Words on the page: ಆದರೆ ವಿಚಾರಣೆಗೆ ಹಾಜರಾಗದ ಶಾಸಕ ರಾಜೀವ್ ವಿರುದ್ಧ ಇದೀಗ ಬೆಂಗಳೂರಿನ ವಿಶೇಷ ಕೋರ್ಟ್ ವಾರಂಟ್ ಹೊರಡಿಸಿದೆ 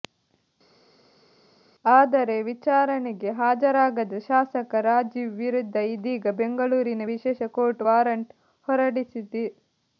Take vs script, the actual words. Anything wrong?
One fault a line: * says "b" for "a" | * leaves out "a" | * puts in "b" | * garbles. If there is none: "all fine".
all fine